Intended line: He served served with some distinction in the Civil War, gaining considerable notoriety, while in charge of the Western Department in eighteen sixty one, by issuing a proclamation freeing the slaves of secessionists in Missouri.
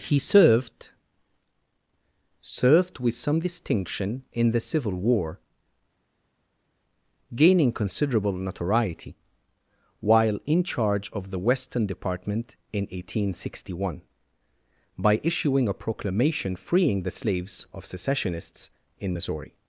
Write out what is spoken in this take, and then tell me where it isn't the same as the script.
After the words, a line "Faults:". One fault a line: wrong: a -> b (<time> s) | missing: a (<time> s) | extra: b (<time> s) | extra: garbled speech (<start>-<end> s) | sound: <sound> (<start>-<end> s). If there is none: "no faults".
He served served with some distinction in the Civil War, gaining considerable notoriety, while in charge of the Western Department in eighteen sixty one, by issuing a proclamation freeing the slaves of secessionists in Missouri.
Faults:
no faults